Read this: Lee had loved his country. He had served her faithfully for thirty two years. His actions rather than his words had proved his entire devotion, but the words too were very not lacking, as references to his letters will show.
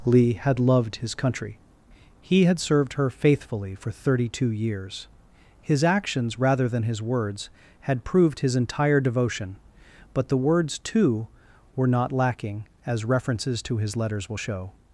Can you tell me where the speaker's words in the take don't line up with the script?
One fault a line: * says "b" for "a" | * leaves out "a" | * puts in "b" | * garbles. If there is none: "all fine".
* leaves out "very"